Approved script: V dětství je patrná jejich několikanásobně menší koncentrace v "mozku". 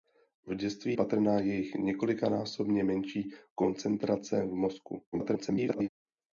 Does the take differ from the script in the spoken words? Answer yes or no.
yes